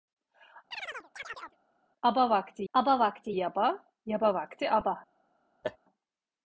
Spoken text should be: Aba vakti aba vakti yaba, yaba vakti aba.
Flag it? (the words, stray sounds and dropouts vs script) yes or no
yes